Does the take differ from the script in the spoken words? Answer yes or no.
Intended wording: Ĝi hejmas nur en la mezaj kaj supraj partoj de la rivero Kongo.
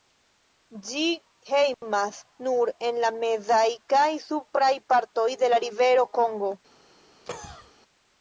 no